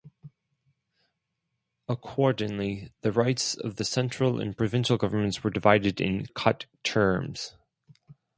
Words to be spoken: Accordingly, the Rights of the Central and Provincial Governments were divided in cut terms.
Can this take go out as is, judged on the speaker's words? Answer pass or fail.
pass